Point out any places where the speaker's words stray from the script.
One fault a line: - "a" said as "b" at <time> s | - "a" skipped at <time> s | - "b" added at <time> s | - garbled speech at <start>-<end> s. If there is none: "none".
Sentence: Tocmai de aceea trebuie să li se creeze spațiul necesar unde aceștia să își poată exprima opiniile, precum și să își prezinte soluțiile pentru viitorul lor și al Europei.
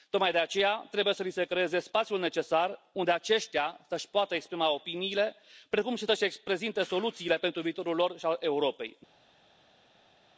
none